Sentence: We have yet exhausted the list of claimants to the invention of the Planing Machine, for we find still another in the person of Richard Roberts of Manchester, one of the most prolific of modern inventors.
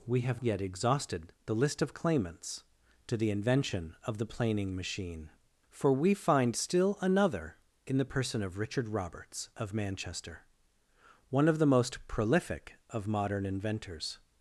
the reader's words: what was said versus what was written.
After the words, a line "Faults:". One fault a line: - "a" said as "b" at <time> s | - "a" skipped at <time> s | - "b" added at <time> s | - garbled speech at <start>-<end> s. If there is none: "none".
We have yet exhausted the list of claimants to the invention of the Planing Machine, for we find still another in the person of Richard Roberts of Manchester, one of the most prolific of modern inventors.
Faults:
none